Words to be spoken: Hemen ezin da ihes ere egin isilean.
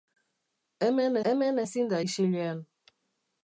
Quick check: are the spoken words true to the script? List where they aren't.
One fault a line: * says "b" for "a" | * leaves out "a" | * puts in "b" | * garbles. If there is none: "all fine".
* puts in "hemen"
* leaves out "ihes ere egin"